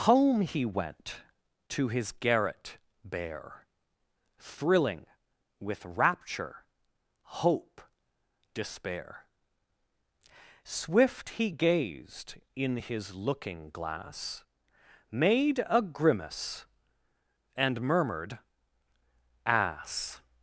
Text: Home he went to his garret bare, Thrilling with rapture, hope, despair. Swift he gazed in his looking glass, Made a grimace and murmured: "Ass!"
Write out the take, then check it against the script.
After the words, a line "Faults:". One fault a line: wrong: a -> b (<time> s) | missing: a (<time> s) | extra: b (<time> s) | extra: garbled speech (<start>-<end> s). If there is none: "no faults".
Home he went to his garret bare, Thrilling with rapture, hope, despair. Swift he gazed in his looking glass, Made a grimace and murmured: "Ass!"
Faults:
no faults